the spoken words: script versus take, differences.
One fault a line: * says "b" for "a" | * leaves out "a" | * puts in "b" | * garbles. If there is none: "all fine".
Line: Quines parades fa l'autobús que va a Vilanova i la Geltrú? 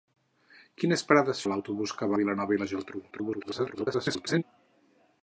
* leaves out "fa"
* leaves out "va"
* garbles